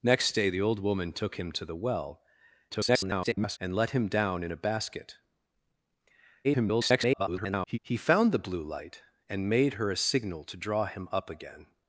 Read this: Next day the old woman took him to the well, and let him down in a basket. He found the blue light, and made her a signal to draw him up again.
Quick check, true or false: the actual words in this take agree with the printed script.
false